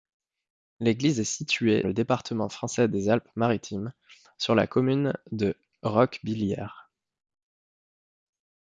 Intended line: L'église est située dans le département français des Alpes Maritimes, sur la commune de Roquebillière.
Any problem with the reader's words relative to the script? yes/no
yes